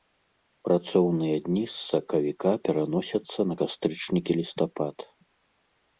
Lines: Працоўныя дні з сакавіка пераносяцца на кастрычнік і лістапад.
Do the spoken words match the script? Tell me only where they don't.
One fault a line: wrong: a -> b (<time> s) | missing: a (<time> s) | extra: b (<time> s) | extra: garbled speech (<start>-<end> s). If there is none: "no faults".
no faults